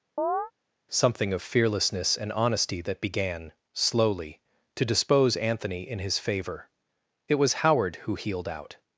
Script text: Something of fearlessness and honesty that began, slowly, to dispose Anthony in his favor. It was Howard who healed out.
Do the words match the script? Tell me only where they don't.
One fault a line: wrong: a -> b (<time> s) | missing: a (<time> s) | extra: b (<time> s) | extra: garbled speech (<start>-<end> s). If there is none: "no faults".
no faults